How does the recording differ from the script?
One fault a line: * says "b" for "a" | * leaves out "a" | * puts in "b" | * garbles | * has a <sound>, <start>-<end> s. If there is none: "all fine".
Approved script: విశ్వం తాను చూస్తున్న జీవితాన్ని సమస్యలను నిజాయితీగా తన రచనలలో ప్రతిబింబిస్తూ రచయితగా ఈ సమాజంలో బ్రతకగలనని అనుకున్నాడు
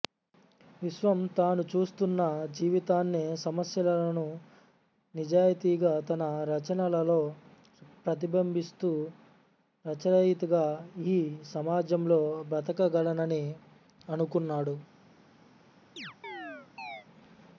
* has a chirp, 16.0-17.1 s